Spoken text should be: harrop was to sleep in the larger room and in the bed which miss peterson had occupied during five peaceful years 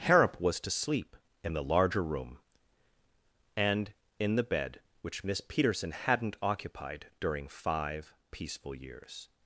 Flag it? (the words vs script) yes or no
yes